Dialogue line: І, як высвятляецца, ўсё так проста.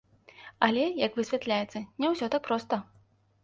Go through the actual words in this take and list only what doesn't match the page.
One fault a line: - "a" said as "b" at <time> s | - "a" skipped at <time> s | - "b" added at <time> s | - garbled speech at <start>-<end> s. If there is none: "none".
- "І" said as "Але" at 0.7 s
- "не" added at 2.0 s